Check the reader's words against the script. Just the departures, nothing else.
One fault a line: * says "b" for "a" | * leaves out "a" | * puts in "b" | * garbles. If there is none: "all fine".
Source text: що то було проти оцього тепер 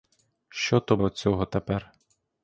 * leaves out "було проти"